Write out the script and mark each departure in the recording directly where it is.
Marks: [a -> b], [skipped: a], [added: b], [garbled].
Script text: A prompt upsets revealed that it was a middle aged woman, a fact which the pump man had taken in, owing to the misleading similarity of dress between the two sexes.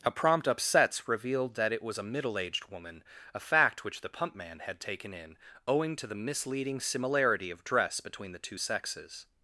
A prompt upsets revealed that it was a middle aged woman, a fact which the pump man had taken in, owing to the misleading similarity of dress between the two sexes.